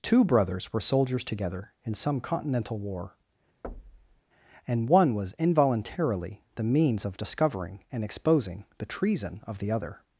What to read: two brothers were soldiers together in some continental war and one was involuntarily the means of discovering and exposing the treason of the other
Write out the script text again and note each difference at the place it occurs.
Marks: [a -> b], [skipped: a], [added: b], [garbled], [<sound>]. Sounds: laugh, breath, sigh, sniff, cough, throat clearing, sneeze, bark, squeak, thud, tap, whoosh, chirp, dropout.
two brothers were soldiers together in some continental war [thud] and one was involuntarily the means of discovering and exposing the treason of the other